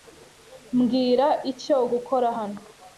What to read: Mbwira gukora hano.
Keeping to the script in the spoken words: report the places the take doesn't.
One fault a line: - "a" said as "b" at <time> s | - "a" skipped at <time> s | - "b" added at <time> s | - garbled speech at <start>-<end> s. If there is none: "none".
- "icyo" added at 1.5 s